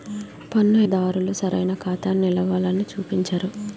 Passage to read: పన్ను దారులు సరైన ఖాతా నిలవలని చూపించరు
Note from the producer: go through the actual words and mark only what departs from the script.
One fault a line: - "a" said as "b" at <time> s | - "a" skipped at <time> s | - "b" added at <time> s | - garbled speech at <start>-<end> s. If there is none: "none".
none